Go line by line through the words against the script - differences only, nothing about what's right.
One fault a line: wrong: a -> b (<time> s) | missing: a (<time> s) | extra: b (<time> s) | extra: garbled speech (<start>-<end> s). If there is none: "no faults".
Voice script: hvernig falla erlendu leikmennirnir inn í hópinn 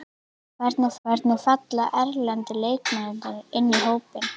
extra: hvernig (1.1 s)